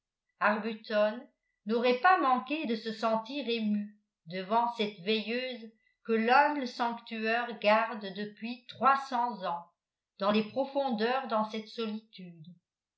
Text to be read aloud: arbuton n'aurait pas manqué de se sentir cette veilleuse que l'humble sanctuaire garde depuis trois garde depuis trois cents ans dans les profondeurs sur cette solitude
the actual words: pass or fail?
fail